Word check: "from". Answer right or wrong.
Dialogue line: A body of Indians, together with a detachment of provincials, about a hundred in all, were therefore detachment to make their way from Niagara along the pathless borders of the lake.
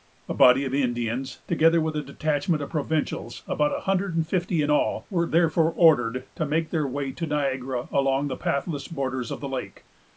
wrong